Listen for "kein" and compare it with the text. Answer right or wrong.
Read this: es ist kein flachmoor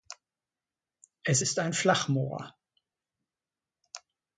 wrong